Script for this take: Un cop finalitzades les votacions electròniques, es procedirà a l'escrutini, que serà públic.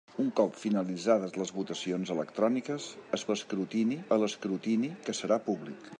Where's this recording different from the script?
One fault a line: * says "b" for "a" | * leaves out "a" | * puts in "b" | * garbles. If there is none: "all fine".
* says "l'escrutini" for "procedirà"